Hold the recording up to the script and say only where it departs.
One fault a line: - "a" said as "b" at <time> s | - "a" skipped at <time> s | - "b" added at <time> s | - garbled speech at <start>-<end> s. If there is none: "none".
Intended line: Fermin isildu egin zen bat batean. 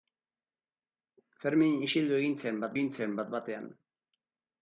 - "egin zen bat" added at 2.7 s